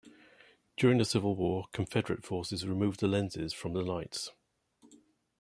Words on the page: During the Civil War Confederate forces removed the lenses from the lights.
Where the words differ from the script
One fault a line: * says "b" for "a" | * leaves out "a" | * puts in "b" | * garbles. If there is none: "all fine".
all fine